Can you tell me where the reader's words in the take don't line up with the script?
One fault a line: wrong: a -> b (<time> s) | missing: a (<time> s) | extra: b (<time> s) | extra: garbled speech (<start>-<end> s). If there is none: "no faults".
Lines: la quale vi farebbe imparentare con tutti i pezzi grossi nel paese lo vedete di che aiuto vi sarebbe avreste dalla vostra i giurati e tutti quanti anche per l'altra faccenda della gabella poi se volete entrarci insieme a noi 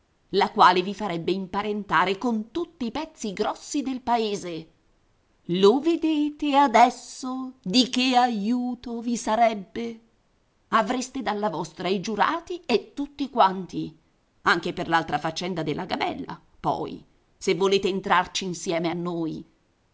wrong: nel -> del (3.8 s)
extra: adesso (6.5 s)